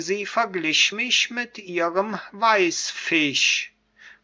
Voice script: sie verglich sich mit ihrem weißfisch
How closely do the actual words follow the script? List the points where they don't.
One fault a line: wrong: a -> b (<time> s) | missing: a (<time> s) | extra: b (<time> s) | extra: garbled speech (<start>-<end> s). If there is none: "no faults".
wrong: sich -> mich (0.9 s)